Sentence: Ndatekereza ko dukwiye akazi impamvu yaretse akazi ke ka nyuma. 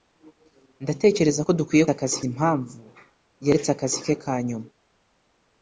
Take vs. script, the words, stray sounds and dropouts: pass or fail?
pass